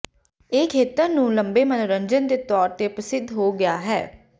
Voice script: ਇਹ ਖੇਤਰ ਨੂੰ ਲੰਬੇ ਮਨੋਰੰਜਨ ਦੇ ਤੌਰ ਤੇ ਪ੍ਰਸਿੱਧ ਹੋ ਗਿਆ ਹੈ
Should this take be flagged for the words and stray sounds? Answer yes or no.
no